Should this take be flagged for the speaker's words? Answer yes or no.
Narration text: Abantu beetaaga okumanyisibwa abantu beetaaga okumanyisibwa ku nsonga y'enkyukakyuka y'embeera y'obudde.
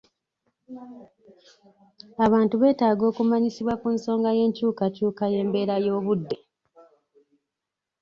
yes